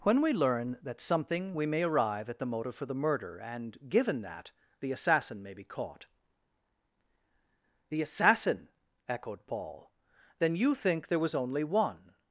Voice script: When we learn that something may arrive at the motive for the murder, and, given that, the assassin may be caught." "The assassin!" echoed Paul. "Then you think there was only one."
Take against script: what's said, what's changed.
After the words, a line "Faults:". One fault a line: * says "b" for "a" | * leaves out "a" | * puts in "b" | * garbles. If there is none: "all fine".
When we learn that something we may arrive at the motive for the murder, and, given that, the assassin may be caught." "The assassin!" echoed Paul. "Then you think there was only one."
Faults:
* puts in "we"